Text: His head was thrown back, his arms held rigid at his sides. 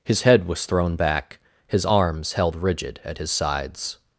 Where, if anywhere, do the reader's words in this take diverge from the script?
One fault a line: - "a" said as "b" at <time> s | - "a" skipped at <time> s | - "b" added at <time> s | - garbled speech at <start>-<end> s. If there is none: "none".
none